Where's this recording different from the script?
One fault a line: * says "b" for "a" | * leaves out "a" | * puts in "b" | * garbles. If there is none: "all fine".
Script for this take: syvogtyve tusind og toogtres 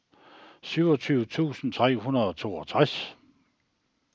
* puts in "tre hundrede"